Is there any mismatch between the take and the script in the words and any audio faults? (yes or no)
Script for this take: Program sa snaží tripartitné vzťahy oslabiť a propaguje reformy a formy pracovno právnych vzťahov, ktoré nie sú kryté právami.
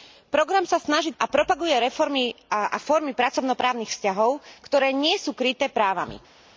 yes